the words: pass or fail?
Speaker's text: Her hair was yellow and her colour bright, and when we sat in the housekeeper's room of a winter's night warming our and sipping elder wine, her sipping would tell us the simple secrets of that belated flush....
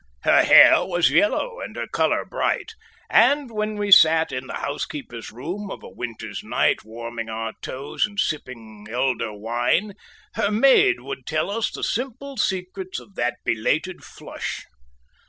fail